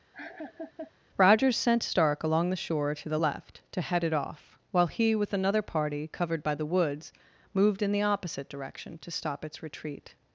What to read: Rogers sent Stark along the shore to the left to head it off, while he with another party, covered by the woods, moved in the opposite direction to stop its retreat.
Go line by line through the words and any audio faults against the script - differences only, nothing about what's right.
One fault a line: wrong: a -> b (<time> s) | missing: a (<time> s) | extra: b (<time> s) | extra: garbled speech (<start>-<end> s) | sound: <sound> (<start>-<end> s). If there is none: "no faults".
sound: laugh (0.1-0.9 s)